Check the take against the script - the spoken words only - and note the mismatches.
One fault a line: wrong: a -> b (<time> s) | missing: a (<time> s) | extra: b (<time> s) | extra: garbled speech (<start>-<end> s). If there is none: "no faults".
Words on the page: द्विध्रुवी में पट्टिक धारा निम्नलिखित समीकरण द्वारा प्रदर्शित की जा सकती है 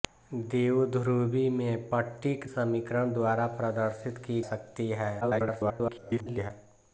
missing: धारा निम्नलिखित (2.4 s)
missing: जा (4.4 s)
extra: garbled speech (5.2-6.5 s)